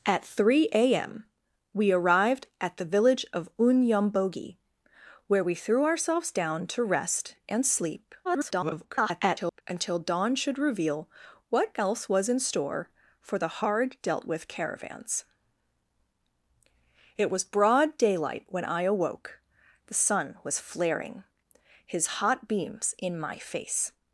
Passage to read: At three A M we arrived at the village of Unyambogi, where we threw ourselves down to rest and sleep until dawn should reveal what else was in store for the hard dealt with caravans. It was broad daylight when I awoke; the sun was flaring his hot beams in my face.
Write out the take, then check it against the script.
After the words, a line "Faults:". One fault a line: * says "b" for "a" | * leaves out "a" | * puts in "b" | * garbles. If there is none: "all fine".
At three A M we arrived at the village of Unyambogi, where we threw ourselves down to rest and sleep [garbled] until dawn should reveal what else was in store for the hard dealt with caravans. It was broad daylight when I awoke; the sun was flaring his hot beams in my face.
Faults:
* garbles